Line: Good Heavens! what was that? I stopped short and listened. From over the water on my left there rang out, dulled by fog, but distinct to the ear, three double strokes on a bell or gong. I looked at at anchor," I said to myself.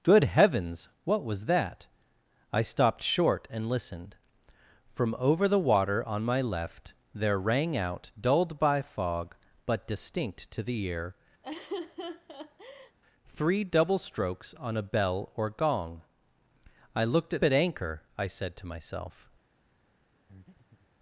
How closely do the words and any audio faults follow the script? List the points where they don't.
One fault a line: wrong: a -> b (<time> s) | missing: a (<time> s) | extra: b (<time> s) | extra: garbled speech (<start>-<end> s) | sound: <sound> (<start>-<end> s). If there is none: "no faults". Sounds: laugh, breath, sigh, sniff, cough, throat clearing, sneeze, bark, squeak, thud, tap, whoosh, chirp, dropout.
sound: laugh (11.4-13.0 s)
sound: breath (20.3-20.9 s)